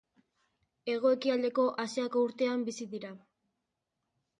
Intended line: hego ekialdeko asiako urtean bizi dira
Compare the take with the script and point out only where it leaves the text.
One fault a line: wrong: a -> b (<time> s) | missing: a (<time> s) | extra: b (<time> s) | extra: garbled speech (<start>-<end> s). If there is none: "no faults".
no faults